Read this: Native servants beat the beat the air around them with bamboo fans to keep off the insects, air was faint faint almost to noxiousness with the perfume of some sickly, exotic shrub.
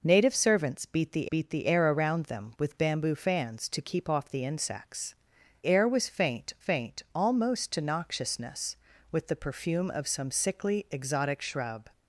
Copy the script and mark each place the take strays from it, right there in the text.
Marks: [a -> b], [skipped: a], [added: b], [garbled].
Native servants beat the beat the air around them with bamboo fans to keep off the insects, air was faint faint almost to noxiousness with the perfume of some sickly, exotic shrub.